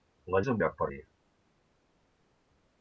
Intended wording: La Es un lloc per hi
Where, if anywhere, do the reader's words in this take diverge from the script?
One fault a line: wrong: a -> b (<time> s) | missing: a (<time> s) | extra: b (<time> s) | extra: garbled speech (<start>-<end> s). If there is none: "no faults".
no faults